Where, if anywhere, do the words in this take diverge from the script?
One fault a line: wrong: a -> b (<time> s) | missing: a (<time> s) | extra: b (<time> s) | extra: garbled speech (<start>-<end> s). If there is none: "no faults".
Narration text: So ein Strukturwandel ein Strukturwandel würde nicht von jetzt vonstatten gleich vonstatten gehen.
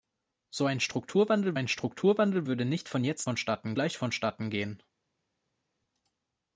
no faults